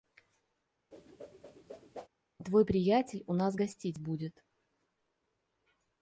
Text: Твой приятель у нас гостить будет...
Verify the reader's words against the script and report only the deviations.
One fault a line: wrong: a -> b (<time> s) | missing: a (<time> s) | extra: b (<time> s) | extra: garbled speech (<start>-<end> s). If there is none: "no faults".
no faults